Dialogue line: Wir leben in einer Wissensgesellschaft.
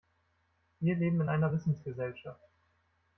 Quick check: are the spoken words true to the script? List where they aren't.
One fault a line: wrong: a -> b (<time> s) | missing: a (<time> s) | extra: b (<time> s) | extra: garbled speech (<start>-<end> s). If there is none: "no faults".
no faults